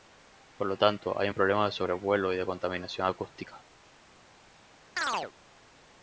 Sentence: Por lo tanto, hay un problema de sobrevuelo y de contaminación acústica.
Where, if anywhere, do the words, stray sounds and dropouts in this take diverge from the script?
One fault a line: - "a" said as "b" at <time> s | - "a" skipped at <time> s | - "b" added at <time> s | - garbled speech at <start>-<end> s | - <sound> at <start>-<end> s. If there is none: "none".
- chirp at 5.0-5.3 s